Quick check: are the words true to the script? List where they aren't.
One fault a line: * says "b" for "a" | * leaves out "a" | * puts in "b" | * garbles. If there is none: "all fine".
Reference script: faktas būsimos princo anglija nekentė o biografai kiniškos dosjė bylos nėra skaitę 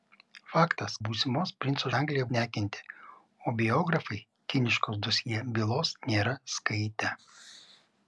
all fine